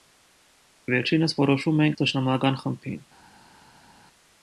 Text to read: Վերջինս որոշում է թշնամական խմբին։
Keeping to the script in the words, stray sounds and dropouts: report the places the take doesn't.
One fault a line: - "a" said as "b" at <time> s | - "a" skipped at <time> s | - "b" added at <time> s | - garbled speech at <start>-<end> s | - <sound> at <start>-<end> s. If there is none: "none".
none